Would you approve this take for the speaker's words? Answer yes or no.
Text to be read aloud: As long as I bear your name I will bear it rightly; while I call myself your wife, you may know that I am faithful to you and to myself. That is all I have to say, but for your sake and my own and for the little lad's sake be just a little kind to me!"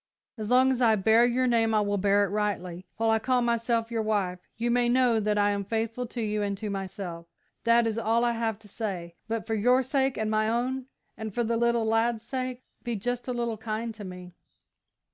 yes